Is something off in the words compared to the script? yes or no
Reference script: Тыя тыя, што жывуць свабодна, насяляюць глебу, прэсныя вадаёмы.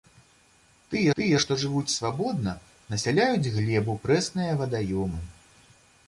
no